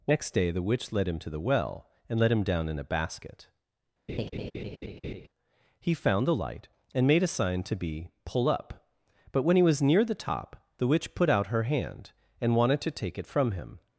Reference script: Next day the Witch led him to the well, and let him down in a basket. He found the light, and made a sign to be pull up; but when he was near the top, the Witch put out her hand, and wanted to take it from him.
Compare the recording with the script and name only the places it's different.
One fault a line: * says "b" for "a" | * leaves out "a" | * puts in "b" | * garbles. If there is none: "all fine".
all fine